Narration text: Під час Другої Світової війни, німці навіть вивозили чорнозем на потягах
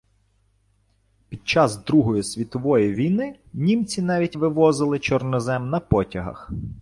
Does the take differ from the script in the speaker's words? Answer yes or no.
no